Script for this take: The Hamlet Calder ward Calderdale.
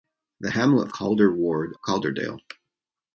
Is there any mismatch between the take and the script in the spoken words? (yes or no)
no